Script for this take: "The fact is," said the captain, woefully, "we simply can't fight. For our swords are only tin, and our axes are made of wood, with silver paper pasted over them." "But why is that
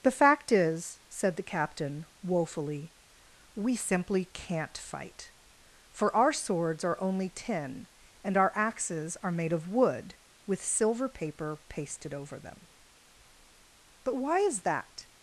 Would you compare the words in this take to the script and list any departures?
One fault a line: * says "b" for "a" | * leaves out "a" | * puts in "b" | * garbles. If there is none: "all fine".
all fine